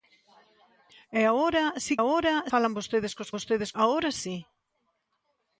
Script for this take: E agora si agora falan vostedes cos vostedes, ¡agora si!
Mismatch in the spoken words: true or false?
false